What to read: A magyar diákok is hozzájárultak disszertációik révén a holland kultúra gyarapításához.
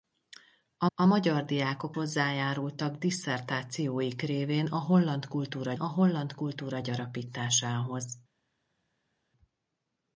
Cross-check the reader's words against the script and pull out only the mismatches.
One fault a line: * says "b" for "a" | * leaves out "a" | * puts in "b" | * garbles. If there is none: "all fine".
* puts in "a"
* leaves out "is"
* puts in "a holland kultúra"